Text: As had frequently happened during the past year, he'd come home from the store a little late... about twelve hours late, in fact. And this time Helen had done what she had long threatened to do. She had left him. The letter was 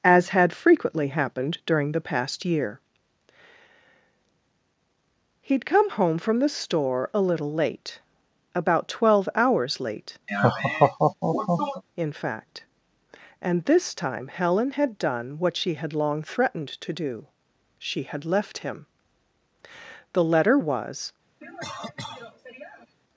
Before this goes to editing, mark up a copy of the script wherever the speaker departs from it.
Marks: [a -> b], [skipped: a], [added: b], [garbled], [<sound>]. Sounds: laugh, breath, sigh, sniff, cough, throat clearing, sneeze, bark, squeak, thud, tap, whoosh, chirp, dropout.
As had frequently happened during the past year, he'd come home from the store a little late... about twelve hours late, [laugh] in fact. And this time Helen had done what she had long threatened to do. She had left him. The letter was [cough]